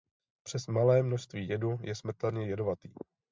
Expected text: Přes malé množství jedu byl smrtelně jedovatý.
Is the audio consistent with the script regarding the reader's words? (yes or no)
no